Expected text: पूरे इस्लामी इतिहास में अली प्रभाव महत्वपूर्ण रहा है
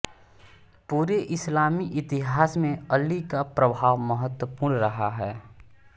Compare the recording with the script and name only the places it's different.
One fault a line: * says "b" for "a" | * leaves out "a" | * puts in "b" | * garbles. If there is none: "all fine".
* puts in "का"